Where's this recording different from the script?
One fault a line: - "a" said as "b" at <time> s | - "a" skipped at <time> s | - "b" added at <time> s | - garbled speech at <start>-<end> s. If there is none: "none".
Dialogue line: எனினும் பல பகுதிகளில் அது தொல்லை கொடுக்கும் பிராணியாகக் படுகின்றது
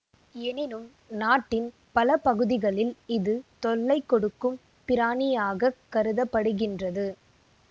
- "நாட்டின்" added at 1.1 s
- "அது" said as "இது" at 3.1 s
- "கருத" added at 5.9 s